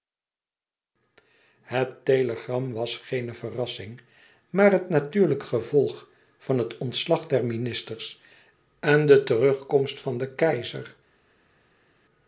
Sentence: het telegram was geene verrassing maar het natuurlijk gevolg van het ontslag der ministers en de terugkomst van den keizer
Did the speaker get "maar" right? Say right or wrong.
right